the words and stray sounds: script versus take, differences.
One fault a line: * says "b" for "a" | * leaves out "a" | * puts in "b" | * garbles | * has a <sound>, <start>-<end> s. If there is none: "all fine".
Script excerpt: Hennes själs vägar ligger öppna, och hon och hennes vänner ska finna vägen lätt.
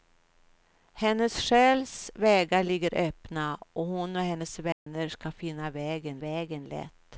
* has a dropout, 4.7-4.9 s
* puts in "vägen"